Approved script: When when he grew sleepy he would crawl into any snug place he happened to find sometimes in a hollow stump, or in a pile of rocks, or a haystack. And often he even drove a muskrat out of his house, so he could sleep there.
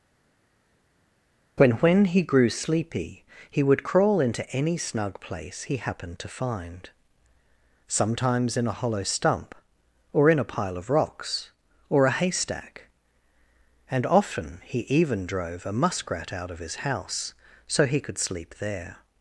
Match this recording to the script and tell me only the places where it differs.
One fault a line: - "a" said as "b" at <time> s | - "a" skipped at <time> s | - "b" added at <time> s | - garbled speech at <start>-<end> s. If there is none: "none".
none